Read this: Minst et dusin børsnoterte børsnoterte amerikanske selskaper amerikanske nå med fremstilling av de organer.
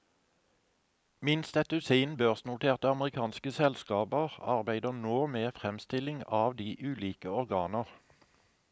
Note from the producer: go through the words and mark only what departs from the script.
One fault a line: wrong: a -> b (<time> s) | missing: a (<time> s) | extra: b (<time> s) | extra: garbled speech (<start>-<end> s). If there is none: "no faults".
missing: børsnoterte (2.9 s)
wrong: amerikanske -> arbeider (4.5 s)
extra: ulike (6.9 s)